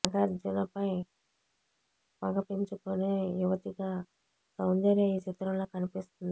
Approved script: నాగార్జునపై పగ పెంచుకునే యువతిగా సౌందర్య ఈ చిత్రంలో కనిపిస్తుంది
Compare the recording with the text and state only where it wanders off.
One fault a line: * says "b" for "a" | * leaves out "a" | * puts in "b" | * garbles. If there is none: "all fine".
all fine